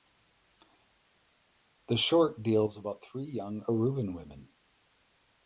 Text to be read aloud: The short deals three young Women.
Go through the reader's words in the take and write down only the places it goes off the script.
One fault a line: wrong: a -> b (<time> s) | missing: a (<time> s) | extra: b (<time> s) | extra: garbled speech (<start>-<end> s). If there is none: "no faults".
extra: about (2.8 s)
extra: Aruban (3.7 s)